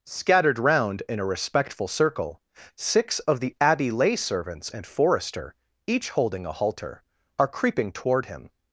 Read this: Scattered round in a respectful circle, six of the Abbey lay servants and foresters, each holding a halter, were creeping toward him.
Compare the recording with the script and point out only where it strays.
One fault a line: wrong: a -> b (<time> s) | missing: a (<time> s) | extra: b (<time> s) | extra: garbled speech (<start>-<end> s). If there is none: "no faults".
wrong: foresters -> forester (4.9 s)
wrong: were -> are (7.4 s)